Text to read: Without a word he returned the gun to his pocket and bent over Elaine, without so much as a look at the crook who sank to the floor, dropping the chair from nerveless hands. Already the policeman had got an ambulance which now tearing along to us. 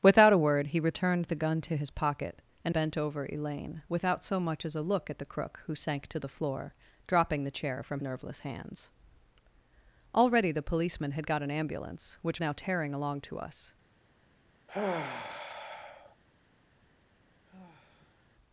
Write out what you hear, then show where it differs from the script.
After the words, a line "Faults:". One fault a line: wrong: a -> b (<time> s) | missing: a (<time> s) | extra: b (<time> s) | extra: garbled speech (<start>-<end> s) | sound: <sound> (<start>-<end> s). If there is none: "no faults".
Without a word he returned the gun to his pocket and bent over Elaine, without so much as a look at the crook who sank to the floor, dropping the chair from nerveless hands. Already the policeman had got an ambulance which now tearing along to us.
Faults:
sound: sigh (14.7-16.2 s)
sound: sigh (17.5-18.3 s)